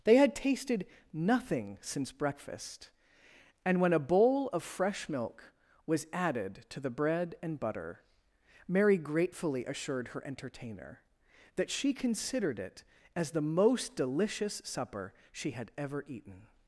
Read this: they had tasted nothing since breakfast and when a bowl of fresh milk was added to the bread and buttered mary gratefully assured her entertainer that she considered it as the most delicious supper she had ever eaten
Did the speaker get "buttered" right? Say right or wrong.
wrong